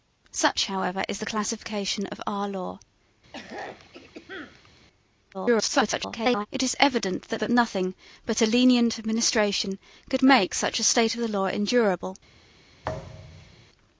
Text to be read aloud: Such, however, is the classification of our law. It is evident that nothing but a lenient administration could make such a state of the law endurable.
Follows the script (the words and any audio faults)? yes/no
no